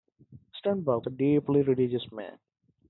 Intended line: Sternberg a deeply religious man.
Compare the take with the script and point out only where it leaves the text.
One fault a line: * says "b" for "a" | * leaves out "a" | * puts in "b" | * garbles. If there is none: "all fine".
all fine